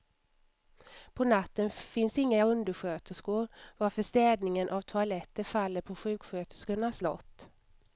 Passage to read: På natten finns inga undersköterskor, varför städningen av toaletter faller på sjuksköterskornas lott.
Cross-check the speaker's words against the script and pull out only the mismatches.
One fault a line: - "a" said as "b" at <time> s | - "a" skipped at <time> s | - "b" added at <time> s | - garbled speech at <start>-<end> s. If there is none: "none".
none